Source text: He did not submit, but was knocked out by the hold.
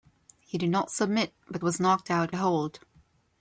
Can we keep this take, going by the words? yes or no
no